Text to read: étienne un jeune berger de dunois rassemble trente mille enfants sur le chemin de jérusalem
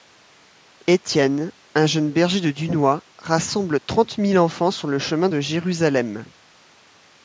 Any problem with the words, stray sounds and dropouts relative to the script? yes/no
no